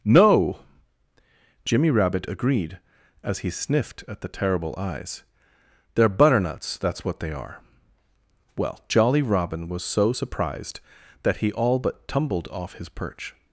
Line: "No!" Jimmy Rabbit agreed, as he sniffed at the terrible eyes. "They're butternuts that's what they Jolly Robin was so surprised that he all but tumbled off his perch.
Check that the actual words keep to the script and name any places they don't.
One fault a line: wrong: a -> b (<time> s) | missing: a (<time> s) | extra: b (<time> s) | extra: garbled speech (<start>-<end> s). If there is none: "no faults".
extra: are Well (7.3 s)